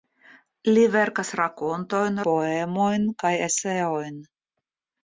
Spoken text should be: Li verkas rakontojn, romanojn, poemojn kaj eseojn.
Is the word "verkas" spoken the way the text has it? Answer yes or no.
yes